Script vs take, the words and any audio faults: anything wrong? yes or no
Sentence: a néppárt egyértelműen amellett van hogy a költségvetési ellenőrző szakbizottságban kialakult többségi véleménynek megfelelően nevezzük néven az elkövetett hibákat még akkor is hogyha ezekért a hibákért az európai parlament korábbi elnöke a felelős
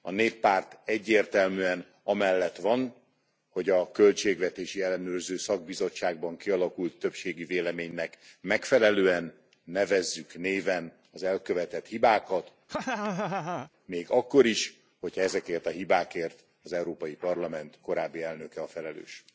yes